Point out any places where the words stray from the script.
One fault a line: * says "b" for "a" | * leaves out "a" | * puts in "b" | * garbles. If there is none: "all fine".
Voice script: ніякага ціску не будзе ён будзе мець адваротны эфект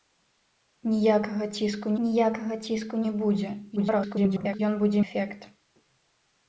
* puts in "ніякага ціску"
* garbles
* leaves out "мець адваротны"